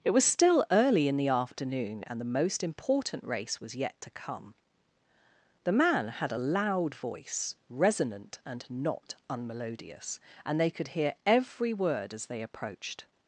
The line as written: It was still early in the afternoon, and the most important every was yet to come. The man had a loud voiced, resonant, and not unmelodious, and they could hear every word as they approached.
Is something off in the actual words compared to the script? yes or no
yes